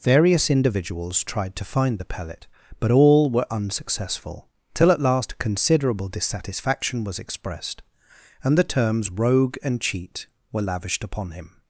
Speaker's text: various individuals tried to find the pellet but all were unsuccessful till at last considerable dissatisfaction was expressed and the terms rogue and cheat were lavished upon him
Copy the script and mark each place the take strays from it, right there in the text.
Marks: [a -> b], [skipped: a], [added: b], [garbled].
various individuals tried to find the pellet but all were unsuccessful till at last considerable dissatisfaction was expressed and the terms rogue and cheat were lavished upon him